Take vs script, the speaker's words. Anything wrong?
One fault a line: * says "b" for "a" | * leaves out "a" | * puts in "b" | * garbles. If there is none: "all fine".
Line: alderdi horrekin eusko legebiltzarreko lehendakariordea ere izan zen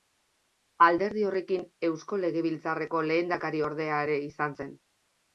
all fine